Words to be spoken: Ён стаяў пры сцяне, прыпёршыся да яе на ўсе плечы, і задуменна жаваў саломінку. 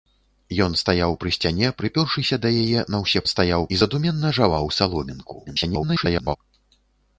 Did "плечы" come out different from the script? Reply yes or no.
yes